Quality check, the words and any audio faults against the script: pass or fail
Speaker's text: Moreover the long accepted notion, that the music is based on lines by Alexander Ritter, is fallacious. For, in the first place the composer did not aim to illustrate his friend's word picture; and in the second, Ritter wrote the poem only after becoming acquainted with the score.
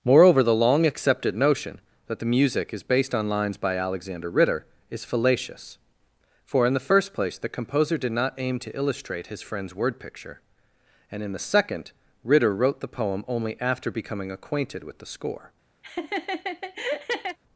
fail